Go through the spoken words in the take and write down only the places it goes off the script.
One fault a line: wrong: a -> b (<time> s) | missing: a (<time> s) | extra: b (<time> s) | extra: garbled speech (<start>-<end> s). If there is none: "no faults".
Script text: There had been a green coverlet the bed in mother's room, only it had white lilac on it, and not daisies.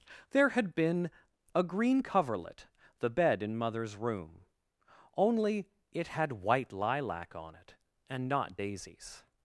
no faults